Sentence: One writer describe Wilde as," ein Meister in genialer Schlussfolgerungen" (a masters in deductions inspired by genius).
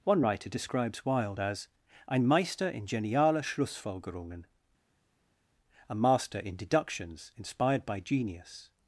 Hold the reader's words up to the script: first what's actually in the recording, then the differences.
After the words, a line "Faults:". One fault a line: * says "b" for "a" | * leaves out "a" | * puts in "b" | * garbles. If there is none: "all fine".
One writer describes Wilde as," ein Meister in genialer Schlussfolgerungen" (a master in deductions inspired by genius).
Faults:
* says "describes" for "describe"
* says "master" for "masters"